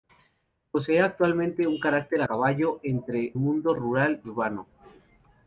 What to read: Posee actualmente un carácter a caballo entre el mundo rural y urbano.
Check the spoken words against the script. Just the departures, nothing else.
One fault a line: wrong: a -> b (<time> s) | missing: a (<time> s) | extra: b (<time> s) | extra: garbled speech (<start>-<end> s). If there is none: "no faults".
missing: a (2.2 s)
missing: el (3.4 s)
missing: y (4.2 s)